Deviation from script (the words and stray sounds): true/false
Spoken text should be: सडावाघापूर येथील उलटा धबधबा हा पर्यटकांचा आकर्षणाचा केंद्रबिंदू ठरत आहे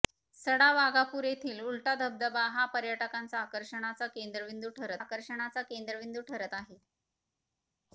true